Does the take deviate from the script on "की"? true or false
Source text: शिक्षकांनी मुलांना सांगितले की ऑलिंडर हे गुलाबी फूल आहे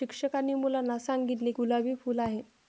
true